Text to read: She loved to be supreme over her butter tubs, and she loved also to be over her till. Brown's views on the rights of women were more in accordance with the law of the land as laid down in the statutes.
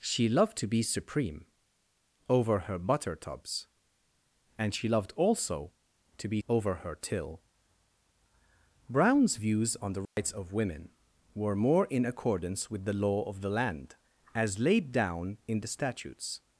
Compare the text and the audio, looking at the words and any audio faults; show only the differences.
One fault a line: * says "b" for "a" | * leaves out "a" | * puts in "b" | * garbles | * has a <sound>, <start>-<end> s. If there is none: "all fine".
* has a dropout, 10.1-10.2 s